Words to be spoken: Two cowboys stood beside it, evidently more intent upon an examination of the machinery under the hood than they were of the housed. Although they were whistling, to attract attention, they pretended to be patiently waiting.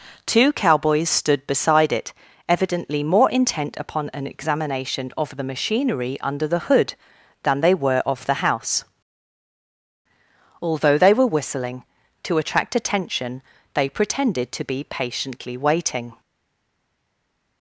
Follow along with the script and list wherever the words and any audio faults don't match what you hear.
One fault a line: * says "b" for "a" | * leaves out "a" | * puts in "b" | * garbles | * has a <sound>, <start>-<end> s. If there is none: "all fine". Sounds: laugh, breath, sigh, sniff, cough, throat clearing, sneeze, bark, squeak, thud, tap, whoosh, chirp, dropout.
* says "house" for "housed"